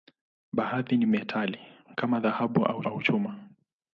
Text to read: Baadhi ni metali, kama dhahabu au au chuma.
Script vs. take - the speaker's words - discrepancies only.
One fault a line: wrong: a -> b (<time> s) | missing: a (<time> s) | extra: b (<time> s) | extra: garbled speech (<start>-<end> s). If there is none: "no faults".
no faults